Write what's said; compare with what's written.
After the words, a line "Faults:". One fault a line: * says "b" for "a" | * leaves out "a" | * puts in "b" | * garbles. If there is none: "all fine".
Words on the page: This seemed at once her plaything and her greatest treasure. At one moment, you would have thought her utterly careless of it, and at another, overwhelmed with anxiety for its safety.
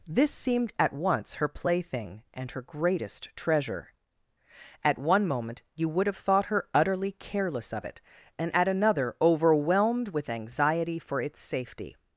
This seemed at once her plaything and her greatest treasure. At one moment, you would have thought her utterly careless of it, and at another, overwhelmed with anxiety for its safety.
Faults:
all fine